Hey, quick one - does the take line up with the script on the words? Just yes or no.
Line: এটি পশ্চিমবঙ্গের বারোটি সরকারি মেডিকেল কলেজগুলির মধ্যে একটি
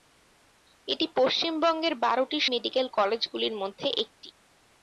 no